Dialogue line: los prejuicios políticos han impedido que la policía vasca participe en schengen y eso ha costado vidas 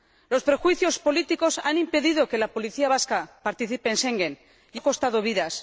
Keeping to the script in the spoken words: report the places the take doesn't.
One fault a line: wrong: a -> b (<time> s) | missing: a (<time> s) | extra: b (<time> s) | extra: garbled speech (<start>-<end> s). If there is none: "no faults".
missing: eso (4.8 s)